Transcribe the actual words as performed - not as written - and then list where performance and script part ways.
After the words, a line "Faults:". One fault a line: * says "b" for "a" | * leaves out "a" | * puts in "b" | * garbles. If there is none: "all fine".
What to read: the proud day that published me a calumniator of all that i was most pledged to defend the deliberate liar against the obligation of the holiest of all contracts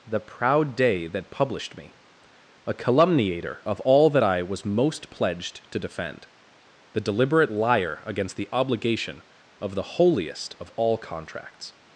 the proud day that published me a calumniator of all that i was most pledged to defend the deliberate liar against the obligation of the holiest of all contracts
Faults:
all fine